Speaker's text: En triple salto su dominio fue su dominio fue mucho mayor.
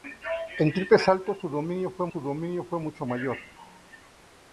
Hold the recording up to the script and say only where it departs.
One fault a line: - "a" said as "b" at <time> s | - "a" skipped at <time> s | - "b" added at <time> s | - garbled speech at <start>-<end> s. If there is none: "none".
none